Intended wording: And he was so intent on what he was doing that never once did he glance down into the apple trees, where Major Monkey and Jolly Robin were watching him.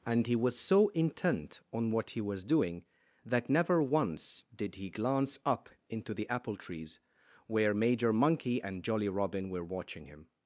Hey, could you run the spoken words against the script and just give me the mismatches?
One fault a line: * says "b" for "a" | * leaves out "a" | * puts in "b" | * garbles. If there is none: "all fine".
* says "up" for "down"